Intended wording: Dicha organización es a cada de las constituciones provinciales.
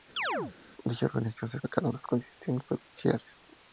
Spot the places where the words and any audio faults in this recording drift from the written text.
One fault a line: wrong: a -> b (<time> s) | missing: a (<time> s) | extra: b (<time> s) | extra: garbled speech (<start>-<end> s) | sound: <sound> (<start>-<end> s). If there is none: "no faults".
sound: chirp (0.2-0.5 s)